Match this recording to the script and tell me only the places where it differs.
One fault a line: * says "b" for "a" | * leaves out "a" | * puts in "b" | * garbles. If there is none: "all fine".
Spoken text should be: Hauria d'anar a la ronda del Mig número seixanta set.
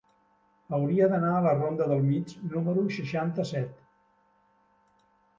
all fine